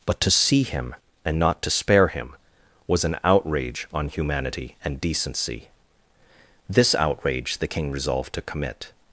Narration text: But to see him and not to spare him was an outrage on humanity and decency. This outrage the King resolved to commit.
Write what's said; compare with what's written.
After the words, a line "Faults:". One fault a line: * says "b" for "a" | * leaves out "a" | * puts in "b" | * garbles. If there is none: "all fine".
But to see him and not to spare him was an outrage on humanity and decency. This outrage the King resolved to commit.
Faults:
all fine